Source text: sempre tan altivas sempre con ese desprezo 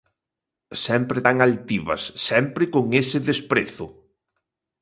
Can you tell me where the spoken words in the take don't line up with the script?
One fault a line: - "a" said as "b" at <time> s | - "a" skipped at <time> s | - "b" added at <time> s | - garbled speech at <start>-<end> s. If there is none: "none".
none